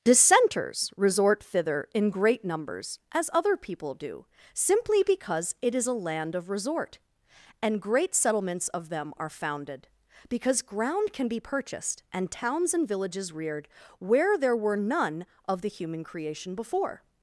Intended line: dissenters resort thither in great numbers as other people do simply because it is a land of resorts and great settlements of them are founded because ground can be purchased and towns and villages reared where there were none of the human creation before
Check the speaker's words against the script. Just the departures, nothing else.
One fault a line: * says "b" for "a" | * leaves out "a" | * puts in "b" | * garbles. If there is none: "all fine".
* says "resort" for "resorts"